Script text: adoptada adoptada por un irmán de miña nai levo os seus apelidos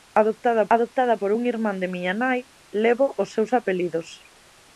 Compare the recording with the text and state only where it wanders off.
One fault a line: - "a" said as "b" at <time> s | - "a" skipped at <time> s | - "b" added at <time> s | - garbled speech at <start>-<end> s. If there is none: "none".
none